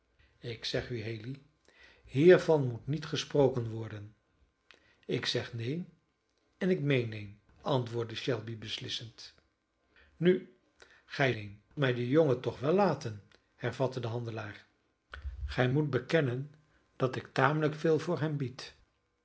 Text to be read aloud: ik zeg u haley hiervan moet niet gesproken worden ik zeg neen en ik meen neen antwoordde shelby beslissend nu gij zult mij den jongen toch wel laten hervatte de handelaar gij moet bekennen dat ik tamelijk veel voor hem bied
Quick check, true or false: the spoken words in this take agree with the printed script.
false